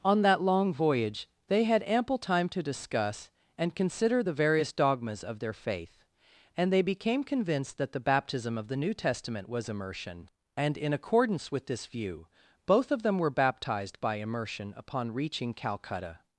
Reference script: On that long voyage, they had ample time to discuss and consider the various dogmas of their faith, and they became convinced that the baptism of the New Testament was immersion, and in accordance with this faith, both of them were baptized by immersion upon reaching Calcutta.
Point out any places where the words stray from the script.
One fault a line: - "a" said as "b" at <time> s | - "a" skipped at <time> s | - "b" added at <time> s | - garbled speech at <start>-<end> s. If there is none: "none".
- "faith" said as "view" at 11.9 s